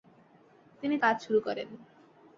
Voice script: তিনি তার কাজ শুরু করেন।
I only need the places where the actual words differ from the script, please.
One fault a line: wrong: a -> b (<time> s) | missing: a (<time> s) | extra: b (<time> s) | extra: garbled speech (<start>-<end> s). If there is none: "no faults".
missing: তার (0.9 s)